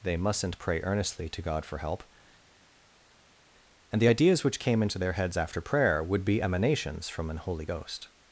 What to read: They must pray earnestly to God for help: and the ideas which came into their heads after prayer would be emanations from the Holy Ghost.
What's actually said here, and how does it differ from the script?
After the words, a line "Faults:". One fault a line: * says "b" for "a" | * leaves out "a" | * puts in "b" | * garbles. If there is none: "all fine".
They mustn't pray earnestly to God for help: and the ideas which came into their heads after prayer would be emanations from an Holy Ghost.
Faults:
* says "mustn't" for "must"
* says "an" for "the"